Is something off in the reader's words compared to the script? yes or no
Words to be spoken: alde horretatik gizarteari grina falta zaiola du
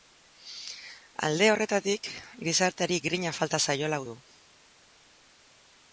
no